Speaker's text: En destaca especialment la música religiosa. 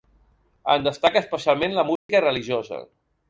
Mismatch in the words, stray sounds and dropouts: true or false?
true